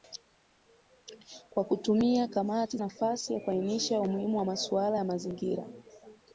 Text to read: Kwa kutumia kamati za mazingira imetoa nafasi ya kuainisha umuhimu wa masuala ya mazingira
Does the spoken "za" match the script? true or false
false